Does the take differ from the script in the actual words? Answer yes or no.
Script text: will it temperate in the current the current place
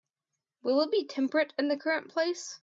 yes